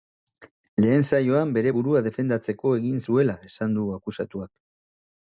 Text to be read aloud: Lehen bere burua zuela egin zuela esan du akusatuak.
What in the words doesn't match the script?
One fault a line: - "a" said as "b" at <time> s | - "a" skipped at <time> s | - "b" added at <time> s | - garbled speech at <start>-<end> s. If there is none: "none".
- "saioan" added at 1.1 s
- "zuela" said as "defendatzeko" at 2.1 s